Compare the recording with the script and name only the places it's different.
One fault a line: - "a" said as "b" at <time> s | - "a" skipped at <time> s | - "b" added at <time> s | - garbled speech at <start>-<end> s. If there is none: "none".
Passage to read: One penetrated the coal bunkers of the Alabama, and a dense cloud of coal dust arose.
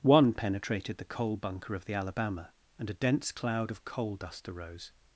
- "bunkers" said as "bunker" at 1.4 s